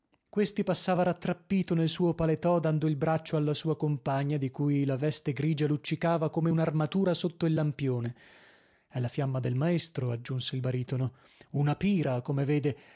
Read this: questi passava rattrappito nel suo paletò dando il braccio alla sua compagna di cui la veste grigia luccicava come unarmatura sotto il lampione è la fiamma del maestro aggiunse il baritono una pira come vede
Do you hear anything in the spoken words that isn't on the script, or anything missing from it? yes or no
no